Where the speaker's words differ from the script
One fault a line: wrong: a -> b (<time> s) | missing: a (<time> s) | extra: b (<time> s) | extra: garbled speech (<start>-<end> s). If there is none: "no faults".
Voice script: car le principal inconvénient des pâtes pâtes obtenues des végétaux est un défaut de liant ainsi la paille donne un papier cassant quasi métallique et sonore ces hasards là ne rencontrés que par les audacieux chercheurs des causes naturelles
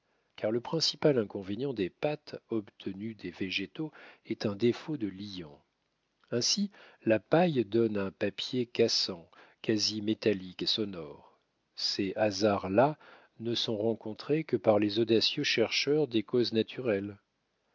missing: pâtes (2.4 s)
extra: sont (13.5 s)